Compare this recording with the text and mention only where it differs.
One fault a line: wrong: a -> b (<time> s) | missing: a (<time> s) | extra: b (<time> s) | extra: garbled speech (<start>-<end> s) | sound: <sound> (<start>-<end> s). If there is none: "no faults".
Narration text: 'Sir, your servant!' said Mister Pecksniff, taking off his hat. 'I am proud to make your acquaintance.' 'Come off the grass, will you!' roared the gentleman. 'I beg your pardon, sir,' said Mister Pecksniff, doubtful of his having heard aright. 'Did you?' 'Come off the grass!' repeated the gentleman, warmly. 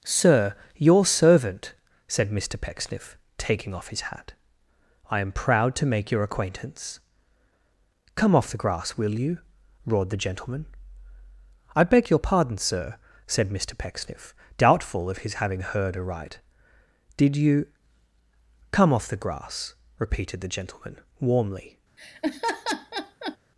sound: laugh (22.0-23.4 s)